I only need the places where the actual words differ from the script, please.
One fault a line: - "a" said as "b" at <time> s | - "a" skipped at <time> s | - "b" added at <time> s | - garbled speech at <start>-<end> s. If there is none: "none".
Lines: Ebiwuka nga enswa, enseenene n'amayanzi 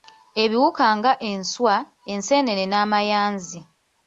none